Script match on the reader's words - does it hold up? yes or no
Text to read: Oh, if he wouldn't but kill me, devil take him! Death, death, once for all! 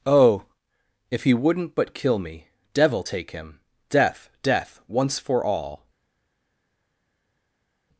yes